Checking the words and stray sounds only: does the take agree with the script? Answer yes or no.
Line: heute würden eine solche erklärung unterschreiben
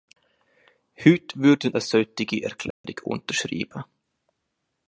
no